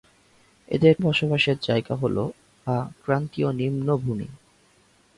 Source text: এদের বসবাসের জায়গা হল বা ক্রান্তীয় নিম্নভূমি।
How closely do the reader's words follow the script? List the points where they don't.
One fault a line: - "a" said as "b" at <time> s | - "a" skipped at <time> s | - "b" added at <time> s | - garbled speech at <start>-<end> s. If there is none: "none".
none